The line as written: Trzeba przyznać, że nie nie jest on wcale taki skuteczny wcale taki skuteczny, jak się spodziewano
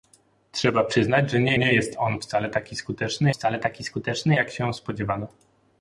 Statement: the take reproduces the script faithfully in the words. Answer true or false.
true